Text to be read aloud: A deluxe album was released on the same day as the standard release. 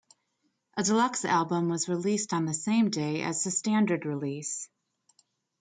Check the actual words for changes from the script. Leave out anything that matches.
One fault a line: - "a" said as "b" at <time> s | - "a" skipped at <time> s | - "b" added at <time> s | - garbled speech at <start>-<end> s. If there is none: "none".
none